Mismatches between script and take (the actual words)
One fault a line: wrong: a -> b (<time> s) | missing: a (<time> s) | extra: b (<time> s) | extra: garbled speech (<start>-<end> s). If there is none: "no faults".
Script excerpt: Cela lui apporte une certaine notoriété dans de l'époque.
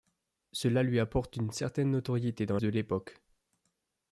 no faults